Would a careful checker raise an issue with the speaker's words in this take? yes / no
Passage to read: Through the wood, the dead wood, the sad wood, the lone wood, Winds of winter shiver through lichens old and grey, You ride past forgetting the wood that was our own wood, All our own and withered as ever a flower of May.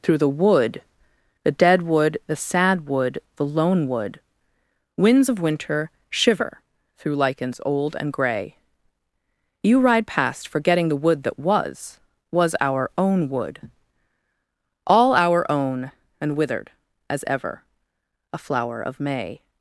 yes